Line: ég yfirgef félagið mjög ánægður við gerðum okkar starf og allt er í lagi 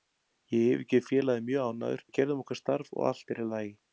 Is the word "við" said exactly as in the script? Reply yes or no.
yes